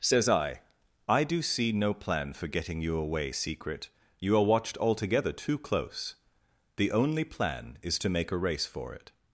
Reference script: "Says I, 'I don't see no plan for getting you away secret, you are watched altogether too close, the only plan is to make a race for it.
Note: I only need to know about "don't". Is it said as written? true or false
false